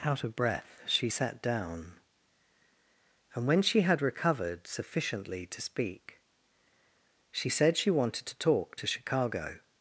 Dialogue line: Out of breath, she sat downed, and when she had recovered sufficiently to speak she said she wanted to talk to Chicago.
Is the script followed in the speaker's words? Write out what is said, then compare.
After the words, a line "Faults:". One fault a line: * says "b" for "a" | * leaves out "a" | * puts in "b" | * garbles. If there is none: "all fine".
Out of breath, she sat down, and when she had recovered sufficiently to speak she said she wanted to talk to Chicago.
Faults:
* says "down" for "downed"